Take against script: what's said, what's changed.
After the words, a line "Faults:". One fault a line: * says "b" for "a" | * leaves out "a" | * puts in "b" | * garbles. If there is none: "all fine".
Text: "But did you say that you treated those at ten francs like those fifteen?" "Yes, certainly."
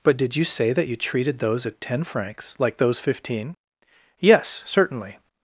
"But did you say that you treated those at ten francs like those fifteen?" "Yes, certainly."
Faults:
all fine